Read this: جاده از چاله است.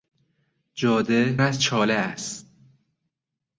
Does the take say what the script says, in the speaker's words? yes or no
yes